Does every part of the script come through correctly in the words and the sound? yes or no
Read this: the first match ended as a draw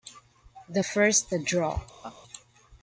no